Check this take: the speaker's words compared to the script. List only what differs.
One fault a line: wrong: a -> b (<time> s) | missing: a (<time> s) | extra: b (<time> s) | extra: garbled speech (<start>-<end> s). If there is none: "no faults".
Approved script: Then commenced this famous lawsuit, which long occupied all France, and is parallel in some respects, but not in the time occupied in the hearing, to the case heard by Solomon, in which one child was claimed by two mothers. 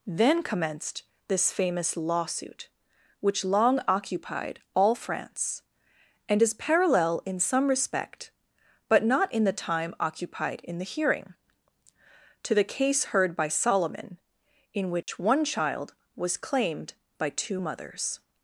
wrong: respects -> respect (7.7 s)